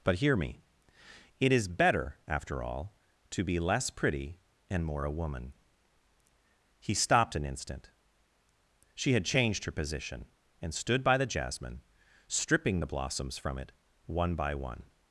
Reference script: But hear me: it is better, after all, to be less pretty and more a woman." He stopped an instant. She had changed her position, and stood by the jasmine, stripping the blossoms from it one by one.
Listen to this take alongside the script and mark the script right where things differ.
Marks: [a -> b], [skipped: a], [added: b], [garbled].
But hear me: it is better, after all, to be less pretty and more a woman." He stopped an instant. She had changed her position, and stood by the jasmine, stripping the blossoms from it one by one.